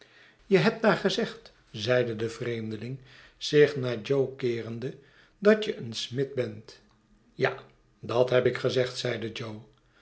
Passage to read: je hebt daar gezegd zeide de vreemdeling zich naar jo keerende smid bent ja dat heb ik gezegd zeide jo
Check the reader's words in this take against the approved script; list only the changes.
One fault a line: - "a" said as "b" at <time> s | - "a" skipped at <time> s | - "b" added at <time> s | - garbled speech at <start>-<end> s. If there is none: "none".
- "dat je een" added at 5.4 s